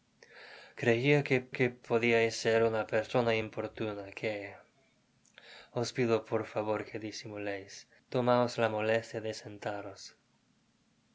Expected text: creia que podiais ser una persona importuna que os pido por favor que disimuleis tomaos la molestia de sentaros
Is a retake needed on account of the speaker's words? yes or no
yes